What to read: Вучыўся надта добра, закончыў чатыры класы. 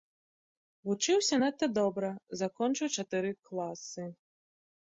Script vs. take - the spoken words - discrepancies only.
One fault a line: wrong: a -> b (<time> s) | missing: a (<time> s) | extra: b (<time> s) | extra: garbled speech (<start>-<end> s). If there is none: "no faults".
no faults